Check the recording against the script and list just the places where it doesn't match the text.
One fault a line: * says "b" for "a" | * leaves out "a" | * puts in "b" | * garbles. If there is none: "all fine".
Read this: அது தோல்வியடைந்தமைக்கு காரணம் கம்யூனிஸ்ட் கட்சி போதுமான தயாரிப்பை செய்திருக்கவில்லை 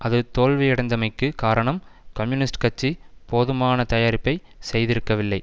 all fine